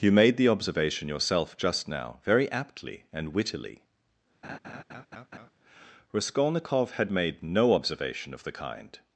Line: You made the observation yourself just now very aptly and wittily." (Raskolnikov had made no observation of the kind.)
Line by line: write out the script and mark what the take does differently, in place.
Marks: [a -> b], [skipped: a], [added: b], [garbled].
You made the observation yourself just now very aptly and wittily." (Raskolnikov had made no observation of the kind.)